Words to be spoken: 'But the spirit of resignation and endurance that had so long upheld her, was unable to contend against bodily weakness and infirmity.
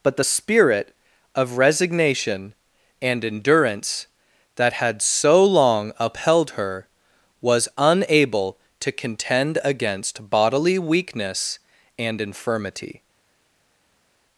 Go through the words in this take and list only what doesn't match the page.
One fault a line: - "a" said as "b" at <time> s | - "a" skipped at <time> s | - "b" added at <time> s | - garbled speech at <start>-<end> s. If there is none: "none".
none